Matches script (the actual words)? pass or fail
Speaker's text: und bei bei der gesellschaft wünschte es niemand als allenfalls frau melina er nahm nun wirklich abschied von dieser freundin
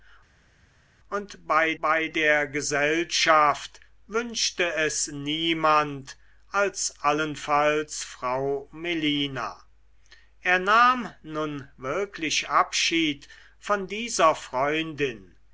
pass